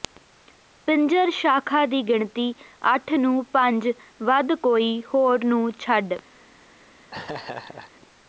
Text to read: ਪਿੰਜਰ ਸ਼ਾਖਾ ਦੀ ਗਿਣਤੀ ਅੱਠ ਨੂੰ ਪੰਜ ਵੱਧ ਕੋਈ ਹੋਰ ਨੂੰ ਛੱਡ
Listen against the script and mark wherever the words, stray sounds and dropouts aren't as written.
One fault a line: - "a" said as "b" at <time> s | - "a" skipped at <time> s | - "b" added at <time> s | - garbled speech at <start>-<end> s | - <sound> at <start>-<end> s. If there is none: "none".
- laugh at 7.1-7.9 s